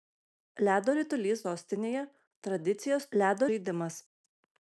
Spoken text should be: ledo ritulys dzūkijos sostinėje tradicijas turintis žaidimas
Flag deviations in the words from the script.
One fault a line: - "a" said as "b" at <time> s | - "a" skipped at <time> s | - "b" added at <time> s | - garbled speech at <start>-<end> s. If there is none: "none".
- "dzūkijos" skipped at 1.4 s
- "turintis" said as "ledo" at 3.2 s